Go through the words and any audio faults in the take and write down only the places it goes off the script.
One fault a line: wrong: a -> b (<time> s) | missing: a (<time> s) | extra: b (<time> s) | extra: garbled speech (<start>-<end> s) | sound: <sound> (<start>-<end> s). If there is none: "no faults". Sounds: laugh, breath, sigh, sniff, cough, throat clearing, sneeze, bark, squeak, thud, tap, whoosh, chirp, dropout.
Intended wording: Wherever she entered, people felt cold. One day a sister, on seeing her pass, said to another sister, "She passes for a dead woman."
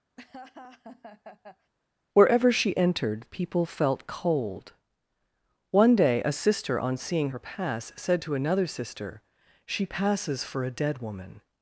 sound: laugh (0.2-1.7 s)